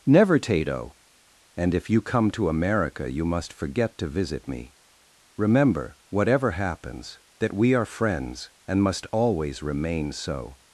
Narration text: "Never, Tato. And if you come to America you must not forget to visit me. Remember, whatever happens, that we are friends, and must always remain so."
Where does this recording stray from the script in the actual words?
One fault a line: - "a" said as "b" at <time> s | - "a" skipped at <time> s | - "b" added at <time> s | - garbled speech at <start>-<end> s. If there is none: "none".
- "not" skipped at 3.5 s